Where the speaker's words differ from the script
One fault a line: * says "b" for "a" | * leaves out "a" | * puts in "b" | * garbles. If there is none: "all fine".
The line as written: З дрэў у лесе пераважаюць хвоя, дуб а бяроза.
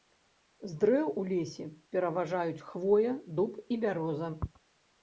* says "і" for "а"